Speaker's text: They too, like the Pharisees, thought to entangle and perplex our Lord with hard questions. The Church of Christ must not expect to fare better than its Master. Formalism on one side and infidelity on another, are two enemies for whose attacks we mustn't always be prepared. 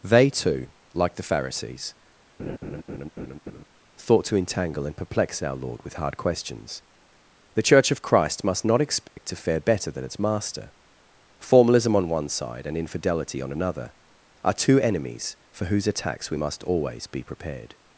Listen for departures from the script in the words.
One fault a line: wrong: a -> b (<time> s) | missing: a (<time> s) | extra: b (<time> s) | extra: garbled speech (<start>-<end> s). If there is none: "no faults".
wrong: mustn't -> must (16.3 s)